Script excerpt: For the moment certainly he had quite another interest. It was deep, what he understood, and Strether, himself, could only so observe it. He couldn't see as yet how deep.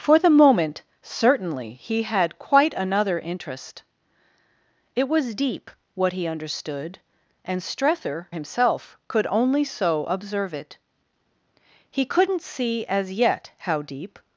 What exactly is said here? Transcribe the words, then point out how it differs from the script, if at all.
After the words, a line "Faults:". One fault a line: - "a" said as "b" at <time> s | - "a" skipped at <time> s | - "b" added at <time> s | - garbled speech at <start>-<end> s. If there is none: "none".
For the moment certainly he had quite another interest. It was deep, what he understood, and Strether, himself, could only so observe it. He couldn't see as yet how deep.
Faults:
none